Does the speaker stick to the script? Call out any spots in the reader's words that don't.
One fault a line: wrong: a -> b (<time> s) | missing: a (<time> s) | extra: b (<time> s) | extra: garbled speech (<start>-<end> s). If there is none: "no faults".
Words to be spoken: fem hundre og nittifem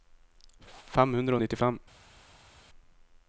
no faults